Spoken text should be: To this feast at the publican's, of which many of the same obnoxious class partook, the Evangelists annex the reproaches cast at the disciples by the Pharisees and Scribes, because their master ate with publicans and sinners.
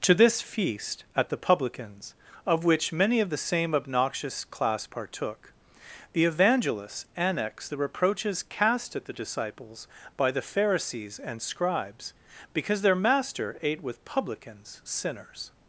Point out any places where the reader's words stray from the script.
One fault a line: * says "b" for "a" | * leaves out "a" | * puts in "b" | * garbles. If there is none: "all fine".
* leaves out "and"